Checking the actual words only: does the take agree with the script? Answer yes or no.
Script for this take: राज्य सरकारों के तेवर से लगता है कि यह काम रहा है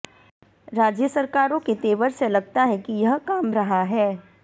yes